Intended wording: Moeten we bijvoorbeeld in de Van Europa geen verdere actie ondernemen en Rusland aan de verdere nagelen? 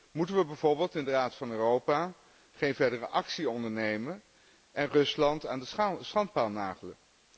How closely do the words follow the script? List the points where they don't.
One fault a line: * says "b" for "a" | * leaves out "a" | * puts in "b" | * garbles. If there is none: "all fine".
* puts in "Raad"
* says "schandpaal" for "verdere"